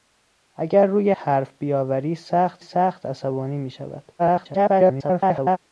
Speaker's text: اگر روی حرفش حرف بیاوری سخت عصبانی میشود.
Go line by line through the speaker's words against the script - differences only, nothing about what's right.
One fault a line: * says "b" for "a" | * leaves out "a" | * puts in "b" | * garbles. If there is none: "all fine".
* leaves out "حرفش"
* puts in "سخت"
* garbles